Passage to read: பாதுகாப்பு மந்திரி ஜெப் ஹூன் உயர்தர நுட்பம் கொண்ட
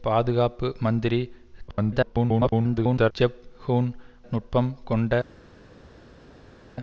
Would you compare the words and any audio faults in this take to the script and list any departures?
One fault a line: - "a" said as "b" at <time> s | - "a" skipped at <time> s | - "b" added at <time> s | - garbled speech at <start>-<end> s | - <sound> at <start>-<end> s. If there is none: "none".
- garbled speech at 1.7-3.1 s
- "உயர்தர" skipped at 3.9 s